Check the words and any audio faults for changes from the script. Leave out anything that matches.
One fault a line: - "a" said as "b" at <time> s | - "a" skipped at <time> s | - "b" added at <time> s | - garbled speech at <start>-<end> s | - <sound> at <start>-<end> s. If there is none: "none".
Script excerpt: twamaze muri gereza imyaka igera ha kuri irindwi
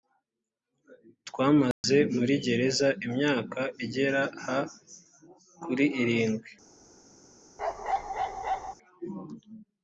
- dropout at 1.7-1.8 s
- bark at 7.6-8.7 s